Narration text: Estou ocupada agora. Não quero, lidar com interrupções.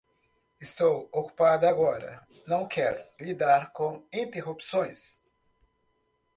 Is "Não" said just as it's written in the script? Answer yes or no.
yes